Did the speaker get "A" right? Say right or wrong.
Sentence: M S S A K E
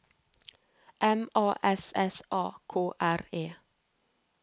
right